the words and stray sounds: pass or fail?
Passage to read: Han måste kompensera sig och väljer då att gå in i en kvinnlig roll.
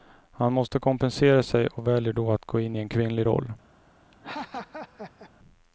fail